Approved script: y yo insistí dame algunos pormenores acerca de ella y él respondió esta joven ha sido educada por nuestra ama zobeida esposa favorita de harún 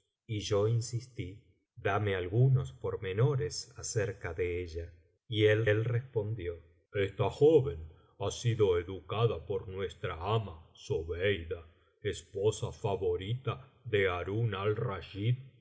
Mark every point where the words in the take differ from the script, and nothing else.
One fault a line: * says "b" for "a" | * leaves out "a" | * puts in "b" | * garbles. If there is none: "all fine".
* puts in "él"